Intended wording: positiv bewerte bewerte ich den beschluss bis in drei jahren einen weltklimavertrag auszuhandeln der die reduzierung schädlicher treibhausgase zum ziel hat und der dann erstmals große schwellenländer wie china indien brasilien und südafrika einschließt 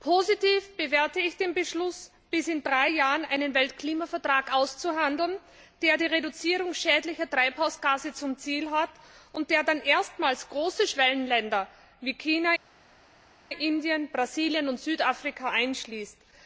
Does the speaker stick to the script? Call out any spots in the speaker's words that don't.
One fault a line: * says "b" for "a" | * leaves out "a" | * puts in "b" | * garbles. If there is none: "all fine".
* leaves out "bewerte"